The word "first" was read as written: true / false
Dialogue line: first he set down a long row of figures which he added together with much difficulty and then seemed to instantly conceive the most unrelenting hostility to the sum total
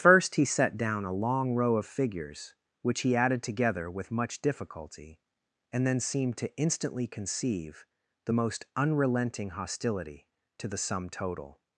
true